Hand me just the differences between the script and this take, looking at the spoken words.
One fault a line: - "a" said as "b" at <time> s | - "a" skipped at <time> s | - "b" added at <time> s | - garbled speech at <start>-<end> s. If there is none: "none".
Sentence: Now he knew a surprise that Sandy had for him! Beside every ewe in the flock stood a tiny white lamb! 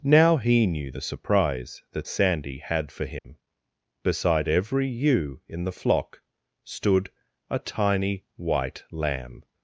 - "a" said as "the" at 0.9 s